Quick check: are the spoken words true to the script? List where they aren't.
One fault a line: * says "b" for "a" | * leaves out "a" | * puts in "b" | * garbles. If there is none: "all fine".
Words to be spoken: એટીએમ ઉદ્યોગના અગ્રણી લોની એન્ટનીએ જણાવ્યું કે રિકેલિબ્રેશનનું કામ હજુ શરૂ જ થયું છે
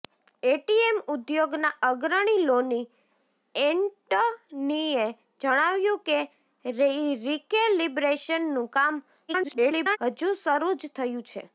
* garbles